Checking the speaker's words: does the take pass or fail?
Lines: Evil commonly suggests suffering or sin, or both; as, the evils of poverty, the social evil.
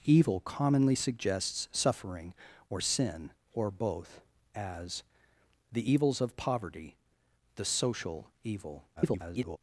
fail